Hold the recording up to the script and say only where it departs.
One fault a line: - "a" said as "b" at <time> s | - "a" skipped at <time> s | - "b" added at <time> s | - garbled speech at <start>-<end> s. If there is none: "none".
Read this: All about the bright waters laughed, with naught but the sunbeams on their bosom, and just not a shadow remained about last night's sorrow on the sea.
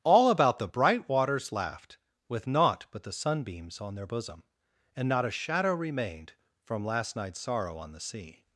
- "just" skipped at 5.1 s
- "about" said as "from" at 6.6 s